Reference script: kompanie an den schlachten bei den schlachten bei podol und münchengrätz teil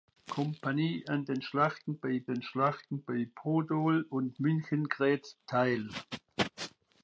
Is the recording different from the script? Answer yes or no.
no